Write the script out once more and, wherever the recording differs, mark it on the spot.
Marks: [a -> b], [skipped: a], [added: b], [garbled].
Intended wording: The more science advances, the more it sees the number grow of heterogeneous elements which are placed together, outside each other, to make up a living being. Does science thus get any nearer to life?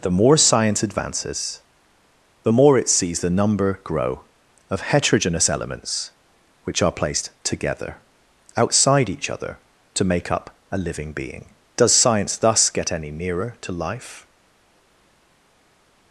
The more science advances, the more it sees the number grow of heterogeneous elements which are placed together, outside each other, to make up a living being. Does science thus get any nearer to life?